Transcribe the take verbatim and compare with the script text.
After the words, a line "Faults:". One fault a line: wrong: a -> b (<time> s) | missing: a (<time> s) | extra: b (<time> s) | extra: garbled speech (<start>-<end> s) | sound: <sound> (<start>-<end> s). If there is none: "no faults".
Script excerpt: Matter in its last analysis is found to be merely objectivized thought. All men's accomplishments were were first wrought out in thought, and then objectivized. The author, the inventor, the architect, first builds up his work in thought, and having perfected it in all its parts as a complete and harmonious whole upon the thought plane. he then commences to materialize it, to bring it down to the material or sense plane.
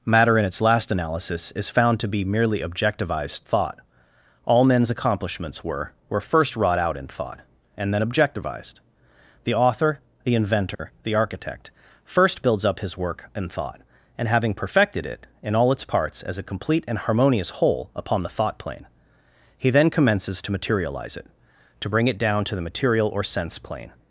Matter in its last analysis is found to be merely objectivized thought. All men's accomplishments were were first wrought out in thought, and then objectivized. The author, the inventor, the architect, first builds up his work in thought, and having perfected it in all its parts as a complete and harmonious whole upon the thought plane. he then commences to materialize it, to bring it down to the material or sense plane.
Faults:
sound: dropout (10.7-10.8 s)